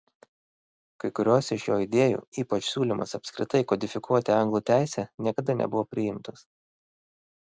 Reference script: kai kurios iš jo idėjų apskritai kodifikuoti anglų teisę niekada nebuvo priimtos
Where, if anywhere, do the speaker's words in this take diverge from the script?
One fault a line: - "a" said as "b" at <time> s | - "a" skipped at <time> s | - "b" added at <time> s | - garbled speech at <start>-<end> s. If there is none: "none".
- "ypač siūlymas" added at 2.4 s